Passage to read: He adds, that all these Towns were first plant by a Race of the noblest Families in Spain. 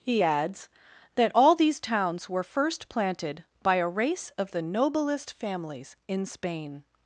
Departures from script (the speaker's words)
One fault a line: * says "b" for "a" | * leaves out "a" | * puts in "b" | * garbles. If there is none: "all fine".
* says "planted" for "plant"